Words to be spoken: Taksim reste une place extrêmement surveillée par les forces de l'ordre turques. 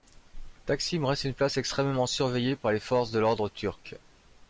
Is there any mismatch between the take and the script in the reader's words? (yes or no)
no